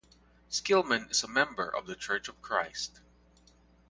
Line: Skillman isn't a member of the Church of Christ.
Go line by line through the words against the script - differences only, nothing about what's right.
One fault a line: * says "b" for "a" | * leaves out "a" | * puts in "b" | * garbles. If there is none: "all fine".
* says "is" for "isn't"